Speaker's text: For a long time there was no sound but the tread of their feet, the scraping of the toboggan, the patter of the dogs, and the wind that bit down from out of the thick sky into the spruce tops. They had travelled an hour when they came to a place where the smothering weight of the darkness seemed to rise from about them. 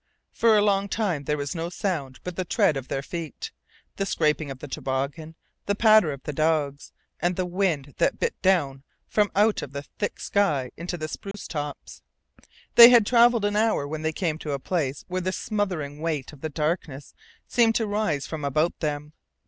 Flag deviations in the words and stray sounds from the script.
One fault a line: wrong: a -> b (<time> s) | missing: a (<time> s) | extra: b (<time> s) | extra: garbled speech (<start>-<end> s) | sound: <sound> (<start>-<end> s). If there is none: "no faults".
sound: dropout (11.3-11.3 s)